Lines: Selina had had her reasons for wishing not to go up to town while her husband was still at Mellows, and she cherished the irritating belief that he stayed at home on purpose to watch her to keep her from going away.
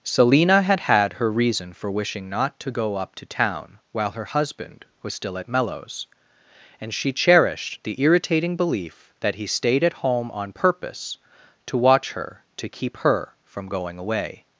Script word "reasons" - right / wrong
wrong